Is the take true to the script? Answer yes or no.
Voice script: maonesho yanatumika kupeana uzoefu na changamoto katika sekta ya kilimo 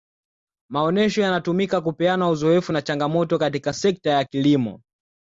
yes